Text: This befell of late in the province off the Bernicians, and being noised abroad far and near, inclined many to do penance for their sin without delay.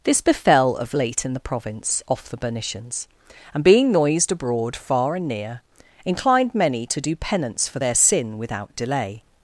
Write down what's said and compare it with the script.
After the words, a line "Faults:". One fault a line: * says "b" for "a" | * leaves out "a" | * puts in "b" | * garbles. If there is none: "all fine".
This befell of late in the province off the Bernicians, and being noised abroad far and near, inclined many to do penance for their sin without delay.
Faults:
all fine